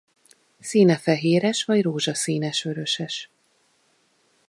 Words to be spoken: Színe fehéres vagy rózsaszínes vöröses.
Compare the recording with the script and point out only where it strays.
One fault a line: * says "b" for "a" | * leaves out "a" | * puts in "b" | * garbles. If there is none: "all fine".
all fine